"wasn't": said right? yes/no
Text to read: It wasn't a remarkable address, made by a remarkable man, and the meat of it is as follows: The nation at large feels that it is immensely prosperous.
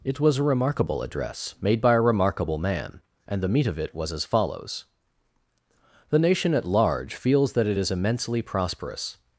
no